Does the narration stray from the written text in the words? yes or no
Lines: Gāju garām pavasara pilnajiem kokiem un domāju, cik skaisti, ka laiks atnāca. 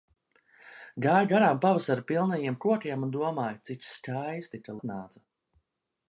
yes